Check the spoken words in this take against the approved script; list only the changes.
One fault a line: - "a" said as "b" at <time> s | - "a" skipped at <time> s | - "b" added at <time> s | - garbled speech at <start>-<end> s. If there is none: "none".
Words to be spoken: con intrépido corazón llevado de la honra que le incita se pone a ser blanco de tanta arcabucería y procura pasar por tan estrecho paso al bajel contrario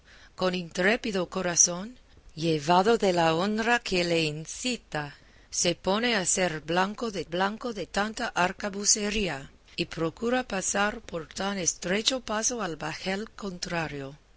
- "blanco de" added at 7.2 s